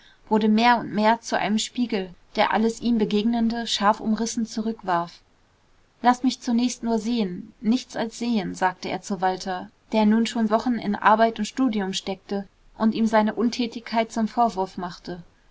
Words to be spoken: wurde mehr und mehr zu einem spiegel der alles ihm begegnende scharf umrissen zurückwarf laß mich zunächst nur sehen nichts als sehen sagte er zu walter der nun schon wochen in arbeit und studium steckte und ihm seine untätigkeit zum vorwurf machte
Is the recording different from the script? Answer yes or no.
no